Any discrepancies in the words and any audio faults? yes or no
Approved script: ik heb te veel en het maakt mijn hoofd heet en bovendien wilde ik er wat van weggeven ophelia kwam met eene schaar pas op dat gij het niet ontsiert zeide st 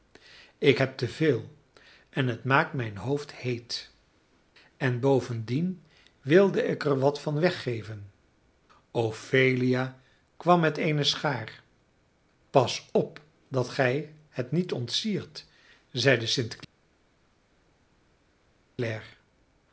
no